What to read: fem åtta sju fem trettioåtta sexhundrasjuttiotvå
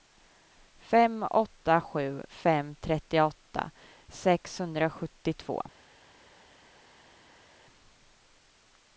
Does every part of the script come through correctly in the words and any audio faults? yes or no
yes